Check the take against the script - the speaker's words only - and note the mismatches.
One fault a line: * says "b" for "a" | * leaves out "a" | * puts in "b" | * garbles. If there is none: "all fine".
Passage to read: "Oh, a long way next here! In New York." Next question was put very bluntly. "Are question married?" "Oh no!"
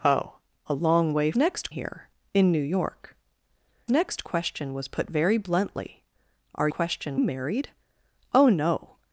all fine